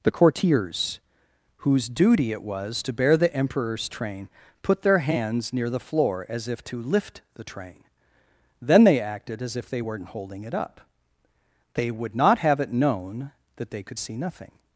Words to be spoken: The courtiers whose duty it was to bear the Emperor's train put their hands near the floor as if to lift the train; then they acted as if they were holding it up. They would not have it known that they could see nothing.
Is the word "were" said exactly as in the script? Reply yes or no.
no